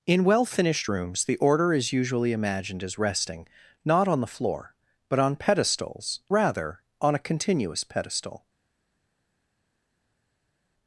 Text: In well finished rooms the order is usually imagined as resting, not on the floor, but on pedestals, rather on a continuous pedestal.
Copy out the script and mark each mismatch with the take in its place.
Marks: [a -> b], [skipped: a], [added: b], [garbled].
In well finished rooms the order is usually imagined as resting, not on the floor, but on pedestals, rather on a continuous pedestal.